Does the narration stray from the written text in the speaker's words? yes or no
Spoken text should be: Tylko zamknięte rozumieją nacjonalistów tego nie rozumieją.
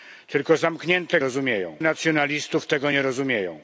no